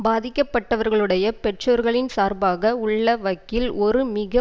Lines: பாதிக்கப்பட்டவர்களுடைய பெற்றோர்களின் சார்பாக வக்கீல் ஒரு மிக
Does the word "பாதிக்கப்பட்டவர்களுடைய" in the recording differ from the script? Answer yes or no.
no